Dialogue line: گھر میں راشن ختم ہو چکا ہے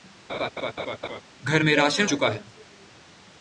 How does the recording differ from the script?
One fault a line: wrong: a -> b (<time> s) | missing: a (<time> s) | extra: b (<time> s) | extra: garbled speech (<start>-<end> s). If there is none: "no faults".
missing: ختم ہو (2.1 s)